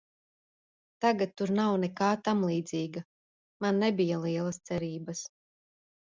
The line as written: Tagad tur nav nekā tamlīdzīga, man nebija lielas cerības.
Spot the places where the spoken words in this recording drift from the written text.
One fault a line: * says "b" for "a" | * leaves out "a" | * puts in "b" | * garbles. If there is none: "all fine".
all fine